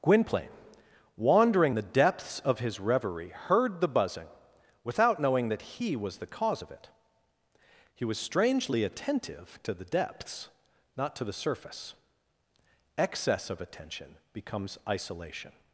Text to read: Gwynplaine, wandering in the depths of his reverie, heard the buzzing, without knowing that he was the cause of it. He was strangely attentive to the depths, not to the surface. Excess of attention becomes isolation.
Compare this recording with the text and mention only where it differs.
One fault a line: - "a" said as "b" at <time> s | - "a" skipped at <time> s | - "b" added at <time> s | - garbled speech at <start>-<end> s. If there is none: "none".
- "in" skipped at 1.8 s